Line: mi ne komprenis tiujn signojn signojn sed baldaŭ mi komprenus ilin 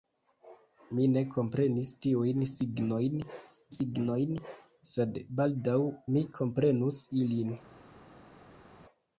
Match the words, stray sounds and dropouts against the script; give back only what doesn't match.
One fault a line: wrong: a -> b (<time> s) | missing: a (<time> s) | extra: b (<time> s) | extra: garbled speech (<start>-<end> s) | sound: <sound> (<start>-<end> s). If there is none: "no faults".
no faults